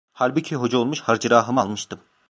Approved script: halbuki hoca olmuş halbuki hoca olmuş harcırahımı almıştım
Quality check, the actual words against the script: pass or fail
fail